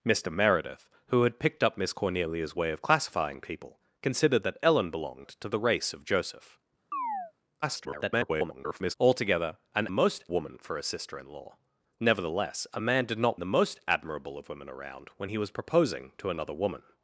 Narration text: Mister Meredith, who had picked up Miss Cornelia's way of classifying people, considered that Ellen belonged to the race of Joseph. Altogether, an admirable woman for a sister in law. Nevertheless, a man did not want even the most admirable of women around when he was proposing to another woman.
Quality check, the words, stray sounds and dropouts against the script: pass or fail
fail